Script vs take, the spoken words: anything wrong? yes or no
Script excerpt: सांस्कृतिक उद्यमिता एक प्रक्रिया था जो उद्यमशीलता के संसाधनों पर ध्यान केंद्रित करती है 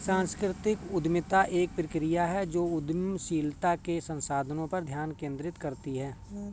yes